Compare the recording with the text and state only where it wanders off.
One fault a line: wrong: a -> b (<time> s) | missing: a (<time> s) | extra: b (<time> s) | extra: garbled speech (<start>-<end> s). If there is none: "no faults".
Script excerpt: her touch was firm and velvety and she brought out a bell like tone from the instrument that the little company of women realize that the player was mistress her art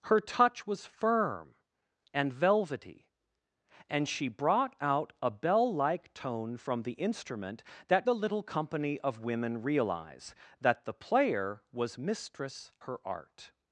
no faults